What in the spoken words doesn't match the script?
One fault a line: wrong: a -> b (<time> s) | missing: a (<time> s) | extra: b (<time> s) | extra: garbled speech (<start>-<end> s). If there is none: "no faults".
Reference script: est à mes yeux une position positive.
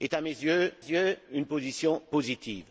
extra: yeux (0.8 s)